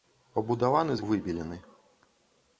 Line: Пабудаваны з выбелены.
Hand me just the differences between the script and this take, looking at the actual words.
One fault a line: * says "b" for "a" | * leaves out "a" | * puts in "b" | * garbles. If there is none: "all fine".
all fine